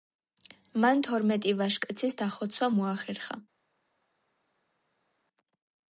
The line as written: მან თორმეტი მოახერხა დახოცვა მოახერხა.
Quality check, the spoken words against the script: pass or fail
fail